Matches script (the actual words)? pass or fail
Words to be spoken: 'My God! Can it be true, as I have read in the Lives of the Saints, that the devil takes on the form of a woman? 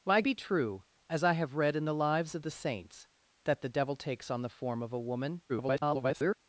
fail